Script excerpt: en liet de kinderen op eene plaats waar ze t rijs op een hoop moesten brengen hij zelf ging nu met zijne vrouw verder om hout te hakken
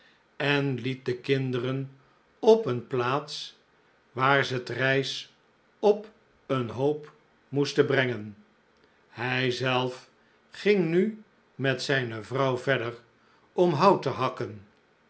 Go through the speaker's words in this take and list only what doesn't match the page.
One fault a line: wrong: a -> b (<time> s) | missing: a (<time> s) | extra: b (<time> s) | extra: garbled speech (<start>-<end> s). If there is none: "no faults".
no faults